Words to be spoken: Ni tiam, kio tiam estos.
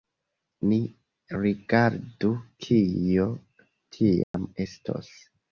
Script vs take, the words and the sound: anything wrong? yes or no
yes